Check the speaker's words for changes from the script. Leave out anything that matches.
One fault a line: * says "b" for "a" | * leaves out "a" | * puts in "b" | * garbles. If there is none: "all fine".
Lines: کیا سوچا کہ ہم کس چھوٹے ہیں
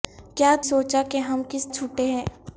all fine